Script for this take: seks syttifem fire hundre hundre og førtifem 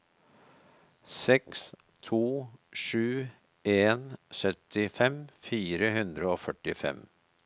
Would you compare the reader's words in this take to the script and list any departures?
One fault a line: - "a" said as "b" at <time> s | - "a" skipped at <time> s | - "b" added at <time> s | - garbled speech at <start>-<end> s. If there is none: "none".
- "to sju en" added at 2.1 s
- "hundre" skipped at 6.3 s